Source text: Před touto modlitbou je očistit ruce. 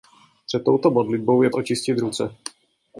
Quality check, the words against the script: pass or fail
pass